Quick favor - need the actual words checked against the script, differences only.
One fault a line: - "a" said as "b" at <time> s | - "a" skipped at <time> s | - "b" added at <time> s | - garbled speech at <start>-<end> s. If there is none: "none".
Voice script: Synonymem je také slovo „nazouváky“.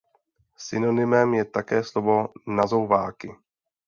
none